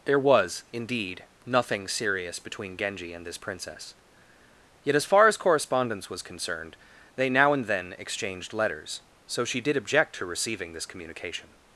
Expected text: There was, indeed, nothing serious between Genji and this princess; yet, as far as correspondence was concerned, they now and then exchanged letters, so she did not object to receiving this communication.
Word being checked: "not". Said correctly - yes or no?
no